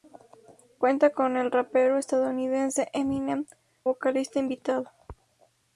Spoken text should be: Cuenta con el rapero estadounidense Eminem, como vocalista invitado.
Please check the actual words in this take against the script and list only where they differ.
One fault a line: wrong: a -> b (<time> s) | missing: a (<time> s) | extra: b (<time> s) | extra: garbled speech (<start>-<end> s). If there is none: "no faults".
missing: como (3.5 s)